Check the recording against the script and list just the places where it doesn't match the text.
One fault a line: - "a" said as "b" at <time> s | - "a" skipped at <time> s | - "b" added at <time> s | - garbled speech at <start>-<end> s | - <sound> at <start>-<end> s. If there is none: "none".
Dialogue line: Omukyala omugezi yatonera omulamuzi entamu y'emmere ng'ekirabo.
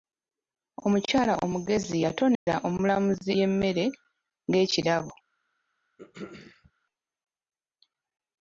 - dropout at 2.3-2.5 s
- "entamu" skipped at 3.3 s
- throat clearing at 6.0-6.7 s